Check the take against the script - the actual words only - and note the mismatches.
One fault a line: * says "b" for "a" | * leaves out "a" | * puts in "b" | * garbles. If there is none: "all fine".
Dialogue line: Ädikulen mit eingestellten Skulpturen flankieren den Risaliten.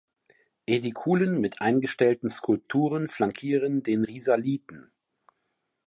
all fine